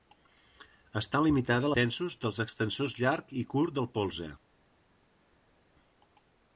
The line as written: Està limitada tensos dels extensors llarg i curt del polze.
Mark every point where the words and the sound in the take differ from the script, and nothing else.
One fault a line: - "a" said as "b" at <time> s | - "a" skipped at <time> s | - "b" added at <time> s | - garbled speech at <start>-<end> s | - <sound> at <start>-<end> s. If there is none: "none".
none